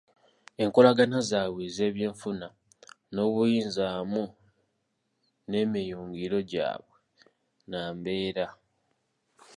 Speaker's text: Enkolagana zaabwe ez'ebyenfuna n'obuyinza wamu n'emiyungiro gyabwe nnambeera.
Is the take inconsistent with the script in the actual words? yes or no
no